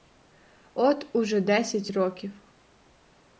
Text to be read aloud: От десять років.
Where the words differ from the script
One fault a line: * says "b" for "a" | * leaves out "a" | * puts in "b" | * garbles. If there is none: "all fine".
* puts in "уже"